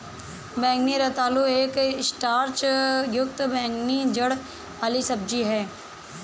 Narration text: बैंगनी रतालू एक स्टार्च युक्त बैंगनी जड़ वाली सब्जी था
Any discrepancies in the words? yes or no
yes